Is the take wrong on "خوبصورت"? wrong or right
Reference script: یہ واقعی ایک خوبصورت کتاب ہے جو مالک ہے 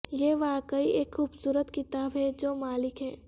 right